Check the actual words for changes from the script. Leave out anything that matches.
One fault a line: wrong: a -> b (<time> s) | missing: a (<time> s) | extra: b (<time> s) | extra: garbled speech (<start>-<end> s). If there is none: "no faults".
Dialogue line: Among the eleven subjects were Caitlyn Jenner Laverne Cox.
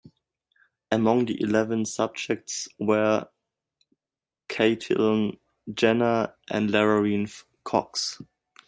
extra: and (6.5 s)